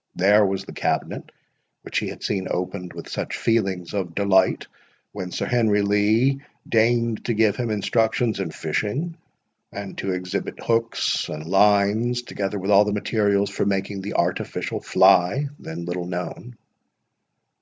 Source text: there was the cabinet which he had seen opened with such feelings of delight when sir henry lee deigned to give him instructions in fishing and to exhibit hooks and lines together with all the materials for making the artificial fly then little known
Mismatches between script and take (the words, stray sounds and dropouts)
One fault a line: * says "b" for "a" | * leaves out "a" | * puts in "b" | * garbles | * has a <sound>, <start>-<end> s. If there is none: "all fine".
all fine